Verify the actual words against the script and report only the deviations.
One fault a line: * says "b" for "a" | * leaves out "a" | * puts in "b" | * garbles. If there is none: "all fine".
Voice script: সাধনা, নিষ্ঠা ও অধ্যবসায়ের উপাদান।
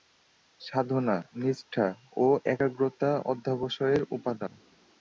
* puts in "একাগ্রতা"